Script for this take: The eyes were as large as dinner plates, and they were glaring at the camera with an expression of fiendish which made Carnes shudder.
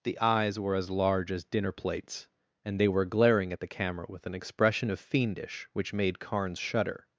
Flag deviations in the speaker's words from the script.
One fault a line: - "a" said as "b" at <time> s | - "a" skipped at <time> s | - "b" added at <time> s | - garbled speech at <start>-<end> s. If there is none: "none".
none